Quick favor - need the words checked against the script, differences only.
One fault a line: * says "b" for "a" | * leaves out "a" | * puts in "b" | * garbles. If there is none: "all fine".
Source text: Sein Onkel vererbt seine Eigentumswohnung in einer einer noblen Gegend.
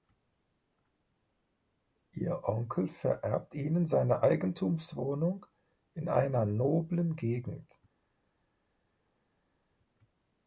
* says "Ihr" for "Sein"
* puts in "ihnen"
* leaves out "einer"